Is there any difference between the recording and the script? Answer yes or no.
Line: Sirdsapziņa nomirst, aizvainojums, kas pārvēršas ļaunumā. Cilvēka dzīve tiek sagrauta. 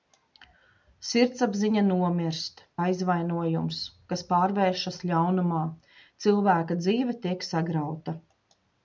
no